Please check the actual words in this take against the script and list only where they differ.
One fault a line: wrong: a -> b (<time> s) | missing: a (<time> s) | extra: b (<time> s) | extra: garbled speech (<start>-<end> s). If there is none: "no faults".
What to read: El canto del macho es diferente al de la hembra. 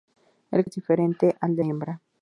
missing: canto del macho (0.7 s)
missing: la (1.6 s)